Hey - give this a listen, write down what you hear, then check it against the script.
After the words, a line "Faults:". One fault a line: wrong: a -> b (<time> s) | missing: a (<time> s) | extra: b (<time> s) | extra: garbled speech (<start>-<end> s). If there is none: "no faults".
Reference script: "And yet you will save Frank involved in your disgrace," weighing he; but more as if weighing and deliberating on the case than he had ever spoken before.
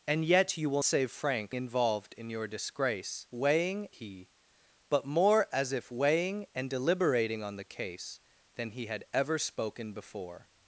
"And yet you will save Frank involved in your disgrace," weighing he; but more as if weighing and deliberating on the case than he had ever spoken before.
Faults:
no faults